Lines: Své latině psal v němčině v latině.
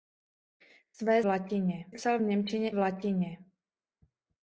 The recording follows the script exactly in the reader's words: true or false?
true